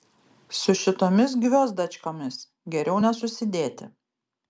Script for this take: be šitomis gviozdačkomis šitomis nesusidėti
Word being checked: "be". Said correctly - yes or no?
no